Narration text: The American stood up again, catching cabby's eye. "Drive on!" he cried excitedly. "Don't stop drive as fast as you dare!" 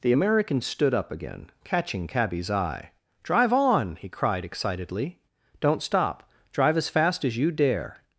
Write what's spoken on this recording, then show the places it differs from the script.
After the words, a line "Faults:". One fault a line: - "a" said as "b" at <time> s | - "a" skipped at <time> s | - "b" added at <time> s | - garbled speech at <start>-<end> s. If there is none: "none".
The American stood up again, catching cabby's eye. "Drive on!" he cried excitedly. "Don't stop drive as fast as you dare!"
Faults:
none